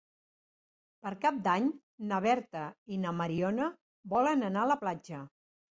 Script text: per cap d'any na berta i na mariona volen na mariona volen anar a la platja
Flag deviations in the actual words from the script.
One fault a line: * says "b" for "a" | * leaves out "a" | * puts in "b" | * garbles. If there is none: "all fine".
* leaves out "na mariona volen"